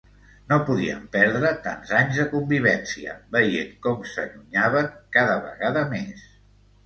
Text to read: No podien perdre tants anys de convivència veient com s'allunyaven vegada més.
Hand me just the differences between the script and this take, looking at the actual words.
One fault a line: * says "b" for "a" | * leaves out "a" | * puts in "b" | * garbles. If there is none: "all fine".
* puts in "cada"